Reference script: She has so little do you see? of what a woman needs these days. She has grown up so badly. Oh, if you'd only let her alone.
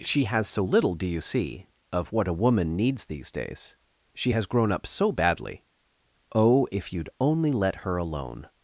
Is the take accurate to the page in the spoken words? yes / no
yes